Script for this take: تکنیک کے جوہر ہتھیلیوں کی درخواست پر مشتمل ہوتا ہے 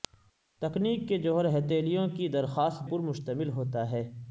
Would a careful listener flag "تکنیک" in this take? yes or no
no